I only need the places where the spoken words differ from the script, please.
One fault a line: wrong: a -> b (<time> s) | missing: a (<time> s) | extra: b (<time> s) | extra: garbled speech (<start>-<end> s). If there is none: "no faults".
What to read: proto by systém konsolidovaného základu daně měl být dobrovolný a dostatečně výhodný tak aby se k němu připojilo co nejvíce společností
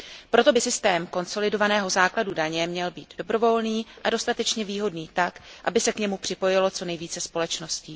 no faults